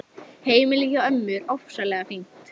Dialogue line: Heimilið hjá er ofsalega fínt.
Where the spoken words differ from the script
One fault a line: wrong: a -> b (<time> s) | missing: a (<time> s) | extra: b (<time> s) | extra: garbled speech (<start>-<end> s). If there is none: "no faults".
extra: ömmu (1.1 s)